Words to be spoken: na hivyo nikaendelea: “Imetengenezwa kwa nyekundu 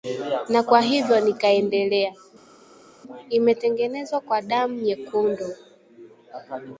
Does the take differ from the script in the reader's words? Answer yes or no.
yes